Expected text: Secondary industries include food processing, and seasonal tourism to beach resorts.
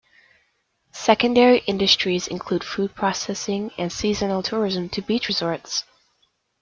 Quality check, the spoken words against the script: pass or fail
pass